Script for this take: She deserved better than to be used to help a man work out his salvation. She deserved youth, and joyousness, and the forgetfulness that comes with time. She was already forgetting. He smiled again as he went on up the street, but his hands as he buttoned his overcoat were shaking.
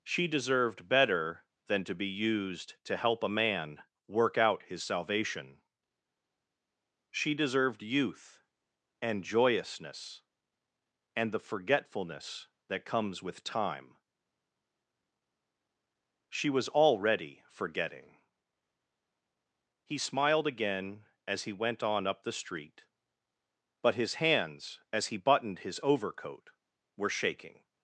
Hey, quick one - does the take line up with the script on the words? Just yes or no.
yes